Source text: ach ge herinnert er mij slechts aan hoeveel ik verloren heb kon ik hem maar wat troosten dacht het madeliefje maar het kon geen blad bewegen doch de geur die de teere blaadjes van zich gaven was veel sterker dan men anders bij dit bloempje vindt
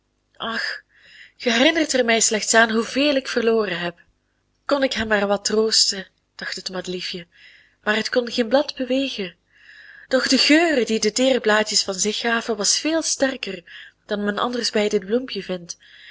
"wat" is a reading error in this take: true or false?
false